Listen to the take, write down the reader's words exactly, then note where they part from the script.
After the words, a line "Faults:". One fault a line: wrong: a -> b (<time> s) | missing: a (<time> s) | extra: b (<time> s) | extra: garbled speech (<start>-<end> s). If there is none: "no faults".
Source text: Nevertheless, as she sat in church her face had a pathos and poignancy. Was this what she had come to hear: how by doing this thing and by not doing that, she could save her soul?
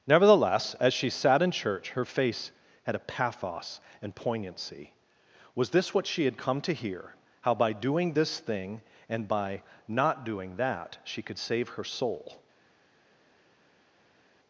Nevertheless, as she sat in church her face had a pathos and poignancy. Was this what she had come to hear: how by doing this thing and by not doing that, she could save her soul?
Faults:
no faults